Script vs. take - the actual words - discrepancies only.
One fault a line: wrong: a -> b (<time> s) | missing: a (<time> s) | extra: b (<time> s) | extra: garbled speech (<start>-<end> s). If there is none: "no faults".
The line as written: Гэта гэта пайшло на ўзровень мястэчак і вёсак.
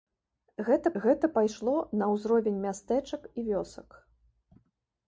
no faults